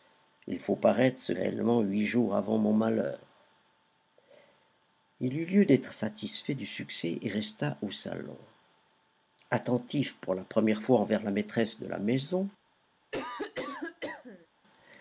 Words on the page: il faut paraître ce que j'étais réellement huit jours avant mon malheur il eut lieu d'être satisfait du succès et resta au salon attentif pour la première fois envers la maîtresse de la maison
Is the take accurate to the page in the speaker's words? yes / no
no